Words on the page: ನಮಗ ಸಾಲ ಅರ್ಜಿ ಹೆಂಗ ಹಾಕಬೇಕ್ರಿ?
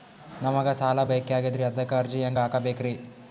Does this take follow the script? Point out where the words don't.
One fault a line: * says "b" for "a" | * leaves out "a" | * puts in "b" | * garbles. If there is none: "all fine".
* puts in "ಬೇಕಾಗ್ಯದ್ರಿ ಅದಕ್ಕ"